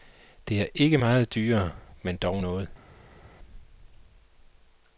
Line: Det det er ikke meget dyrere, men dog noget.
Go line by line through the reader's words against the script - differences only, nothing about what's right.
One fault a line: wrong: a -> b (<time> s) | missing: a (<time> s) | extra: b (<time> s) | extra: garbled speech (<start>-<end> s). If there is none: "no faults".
missing: det (0.6 s)